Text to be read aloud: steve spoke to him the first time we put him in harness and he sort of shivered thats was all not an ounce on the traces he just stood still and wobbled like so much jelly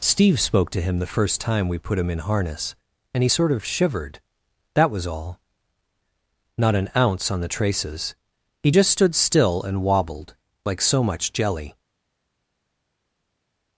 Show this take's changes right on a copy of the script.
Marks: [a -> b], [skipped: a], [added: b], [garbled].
steve spoke to him the first time we put him in harness and he sort of shivered [thats -> that] was all not an ounce on the traces he just stood still and wobbled like so much jelly